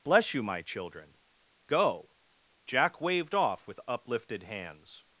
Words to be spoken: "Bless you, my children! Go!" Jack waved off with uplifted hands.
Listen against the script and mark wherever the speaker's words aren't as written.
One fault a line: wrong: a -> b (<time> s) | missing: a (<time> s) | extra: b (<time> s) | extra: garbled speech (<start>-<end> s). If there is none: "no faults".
no faults